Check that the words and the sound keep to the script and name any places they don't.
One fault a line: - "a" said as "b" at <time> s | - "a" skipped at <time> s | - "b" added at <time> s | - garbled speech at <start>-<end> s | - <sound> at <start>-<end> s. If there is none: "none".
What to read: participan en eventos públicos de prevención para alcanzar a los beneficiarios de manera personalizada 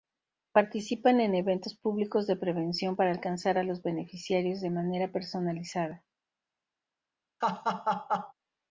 - laugh at 7.4-8.3 s